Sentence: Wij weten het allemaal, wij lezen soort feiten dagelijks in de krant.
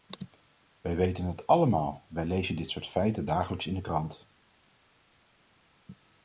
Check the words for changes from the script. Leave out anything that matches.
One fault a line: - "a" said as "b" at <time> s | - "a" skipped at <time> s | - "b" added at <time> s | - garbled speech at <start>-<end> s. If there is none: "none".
- "dit" added at 2.5 s